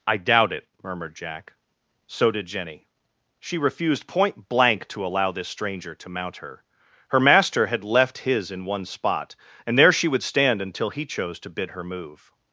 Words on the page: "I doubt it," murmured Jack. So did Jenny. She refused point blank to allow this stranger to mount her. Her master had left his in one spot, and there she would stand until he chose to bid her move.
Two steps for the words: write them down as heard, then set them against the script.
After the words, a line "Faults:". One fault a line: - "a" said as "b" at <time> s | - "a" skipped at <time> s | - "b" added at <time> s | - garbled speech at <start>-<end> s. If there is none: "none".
"I doubt it," murmured Jack. So did Jenny. She refused point blank to allow this stranger to mount her. Her master had left his in one spot, and there she would stand until he chose to bid her move.
Faults:
none